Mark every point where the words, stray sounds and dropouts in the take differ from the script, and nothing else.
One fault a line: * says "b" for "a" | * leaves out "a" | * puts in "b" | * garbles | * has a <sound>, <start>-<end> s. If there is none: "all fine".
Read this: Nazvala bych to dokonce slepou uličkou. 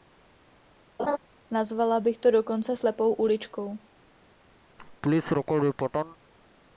* has a laugh, 1.0-1.2 s
* has a laugh, 4.8-6.2 s